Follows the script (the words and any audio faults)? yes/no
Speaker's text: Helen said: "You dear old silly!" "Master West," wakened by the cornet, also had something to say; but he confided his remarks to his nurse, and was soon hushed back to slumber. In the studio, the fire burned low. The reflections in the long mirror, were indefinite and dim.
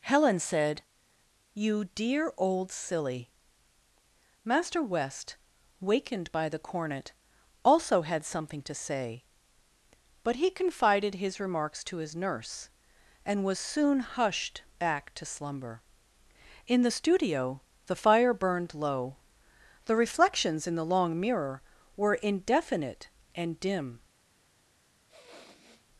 no